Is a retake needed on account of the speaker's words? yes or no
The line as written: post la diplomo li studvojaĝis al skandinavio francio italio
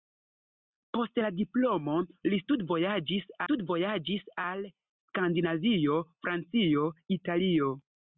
yes